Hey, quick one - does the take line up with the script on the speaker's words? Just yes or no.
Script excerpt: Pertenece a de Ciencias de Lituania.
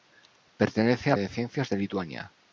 yes